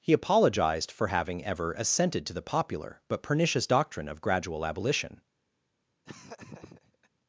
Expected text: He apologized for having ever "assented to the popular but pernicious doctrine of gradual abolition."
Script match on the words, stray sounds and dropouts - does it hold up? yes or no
no